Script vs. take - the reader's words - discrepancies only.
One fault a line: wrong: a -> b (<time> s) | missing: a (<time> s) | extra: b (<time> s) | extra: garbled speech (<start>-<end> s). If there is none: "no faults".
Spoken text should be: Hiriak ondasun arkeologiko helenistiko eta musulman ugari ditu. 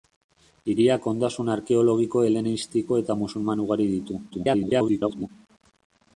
extra: garbled speech (4.3-5.3 s)